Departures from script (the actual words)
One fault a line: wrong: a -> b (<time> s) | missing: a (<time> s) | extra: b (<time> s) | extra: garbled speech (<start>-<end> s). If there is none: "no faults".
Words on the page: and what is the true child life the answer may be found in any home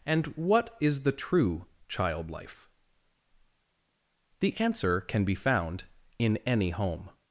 wrong: may -> can (5.0 s)